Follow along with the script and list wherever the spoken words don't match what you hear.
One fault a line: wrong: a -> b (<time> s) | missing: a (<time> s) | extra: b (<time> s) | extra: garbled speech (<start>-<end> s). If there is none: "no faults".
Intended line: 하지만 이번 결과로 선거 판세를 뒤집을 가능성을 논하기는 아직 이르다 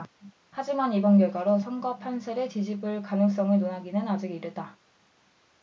no faults